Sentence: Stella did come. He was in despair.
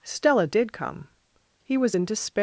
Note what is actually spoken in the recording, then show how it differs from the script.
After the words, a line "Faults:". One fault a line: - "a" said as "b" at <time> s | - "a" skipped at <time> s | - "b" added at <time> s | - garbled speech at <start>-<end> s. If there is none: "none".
Stella did come. He was in despair.
Faults:
none